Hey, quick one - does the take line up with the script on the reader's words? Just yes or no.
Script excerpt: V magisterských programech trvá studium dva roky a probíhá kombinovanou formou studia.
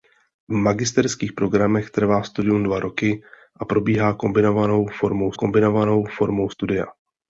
no